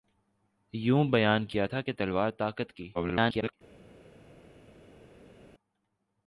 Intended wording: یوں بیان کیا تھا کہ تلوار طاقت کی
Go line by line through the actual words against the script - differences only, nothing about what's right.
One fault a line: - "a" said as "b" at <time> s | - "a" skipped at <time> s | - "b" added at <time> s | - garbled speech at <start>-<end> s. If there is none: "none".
- garbled speech at 2.9-3.5 s